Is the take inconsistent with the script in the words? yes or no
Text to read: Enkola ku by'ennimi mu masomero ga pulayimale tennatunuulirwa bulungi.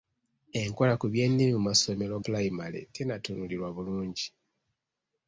yes